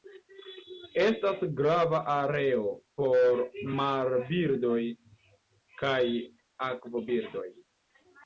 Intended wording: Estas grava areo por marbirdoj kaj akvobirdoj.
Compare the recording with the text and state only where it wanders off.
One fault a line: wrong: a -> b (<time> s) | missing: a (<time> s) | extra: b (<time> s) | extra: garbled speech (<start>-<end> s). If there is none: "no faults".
no faults